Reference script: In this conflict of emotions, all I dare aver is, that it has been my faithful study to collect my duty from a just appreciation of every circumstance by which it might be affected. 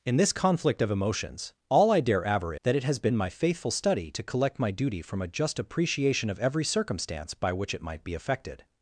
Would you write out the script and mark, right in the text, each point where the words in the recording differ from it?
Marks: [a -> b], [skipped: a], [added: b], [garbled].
In this conflict of emotions, all I dare aver [skipped: is,] that it has been my faithful study to collect my duty from a just appreciation of every circumstance by which it might be affected.